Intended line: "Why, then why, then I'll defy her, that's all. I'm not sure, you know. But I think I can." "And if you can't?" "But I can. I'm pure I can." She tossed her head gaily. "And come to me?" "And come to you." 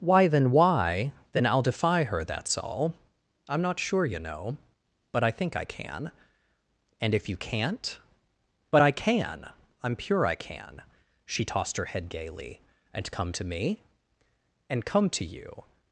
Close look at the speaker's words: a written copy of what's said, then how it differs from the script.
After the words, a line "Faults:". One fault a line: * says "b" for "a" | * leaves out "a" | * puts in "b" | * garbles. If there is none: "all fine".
"Why, then why, then I'll defy her, that's all. I'm not sure, you know. But I think I can." "And if you can't?" "But I can. I'm pure I can." She tossed her head gaily. "And come to me?" "And come to you."
Faults:
all fine